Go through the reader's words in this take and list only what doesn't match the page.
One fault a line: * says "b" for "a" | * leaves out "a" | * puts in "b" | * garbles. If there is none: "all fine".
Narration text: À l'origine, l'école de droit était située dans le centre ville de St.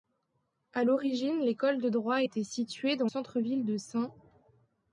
* leaves out "le"